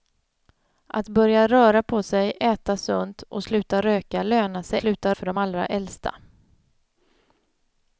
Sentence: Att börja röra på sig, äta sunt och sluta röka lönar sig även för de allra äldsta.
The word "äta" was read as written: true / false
true